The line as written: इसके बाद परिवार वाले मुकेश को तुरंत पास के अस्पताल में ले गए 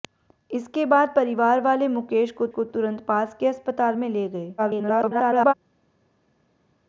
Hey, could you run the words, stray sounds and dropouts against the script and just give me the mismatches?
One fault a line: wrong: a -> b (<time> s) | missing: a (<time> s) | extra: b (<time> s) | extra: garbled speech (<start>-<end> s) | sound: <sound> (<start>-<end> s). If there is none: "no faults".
extra: को (2.5 s)
extra: garbled speech (4.6-5.5 s)